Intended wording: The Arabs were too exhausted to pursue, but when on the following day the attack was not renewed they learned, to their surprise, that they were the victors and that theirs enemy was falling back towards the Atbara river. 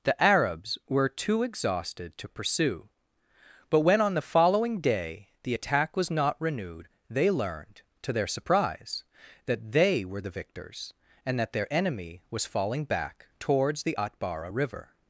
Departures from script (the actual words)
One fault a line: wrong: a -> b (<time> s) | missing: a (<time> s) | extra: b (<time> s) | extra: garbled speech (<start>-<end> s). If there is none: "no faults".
wrong: theirs -> their (11.5 s)